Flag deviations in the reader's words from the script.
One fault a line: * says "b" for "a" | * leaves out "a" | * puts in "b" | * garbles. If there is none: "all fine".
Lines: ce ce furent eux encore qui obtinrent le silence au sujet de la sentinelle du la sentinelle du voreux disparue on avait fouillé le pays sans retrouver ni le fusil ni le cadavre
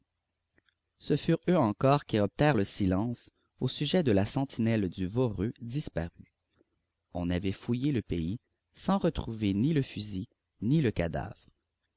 * leaves out "ce"
* leaves out "la sentinelle du"